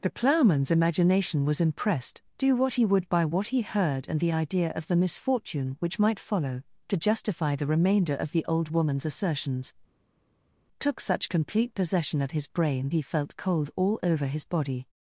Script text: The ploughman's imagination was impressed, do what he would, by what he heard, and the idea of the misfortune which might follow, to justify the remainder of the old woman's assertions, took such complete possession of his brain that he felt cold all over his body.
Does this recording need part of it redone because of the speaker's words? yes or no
yes